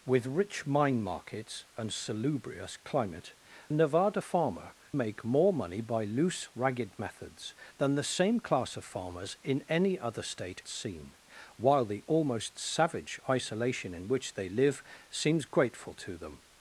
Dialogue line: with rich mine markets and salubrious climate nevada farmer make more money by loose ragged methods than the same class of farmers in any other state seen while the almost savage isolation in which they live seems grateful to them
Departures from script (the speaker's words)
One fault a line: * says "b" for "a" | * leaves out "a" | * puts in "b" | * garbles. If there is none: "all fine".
all fine